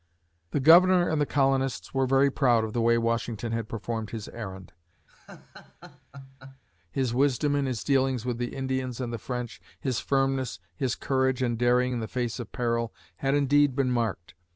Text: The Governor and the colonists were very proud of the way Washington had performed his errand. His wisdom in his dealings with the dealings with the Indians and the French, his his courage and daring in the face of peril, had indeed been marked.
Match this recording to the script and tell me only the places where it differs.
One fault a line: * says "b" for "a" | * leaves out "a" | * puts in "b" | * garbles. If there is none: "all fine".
* leaves out "dealings with the"
* puts in "firmness"